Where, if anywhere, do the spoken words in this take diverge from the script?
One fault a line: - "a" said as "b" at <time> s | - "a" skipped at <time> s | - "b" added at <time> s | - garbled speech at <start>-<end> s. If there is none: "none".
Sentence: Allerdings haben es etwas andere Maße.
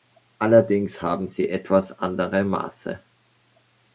- "es" said as "sie" at 1.3 s